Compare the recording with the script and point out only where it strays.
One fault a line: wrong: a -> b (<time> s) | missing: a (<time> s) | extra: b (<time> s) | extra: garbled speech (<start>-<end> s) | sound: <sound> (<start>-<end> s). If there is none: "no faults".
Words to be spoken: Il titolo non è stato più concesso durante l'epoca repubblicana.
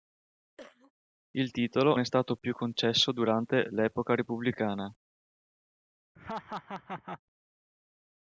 sound: cough (0.6-0.9 s)
missing: non (2.0 s)
sound: laugh (6.2-7.2 s)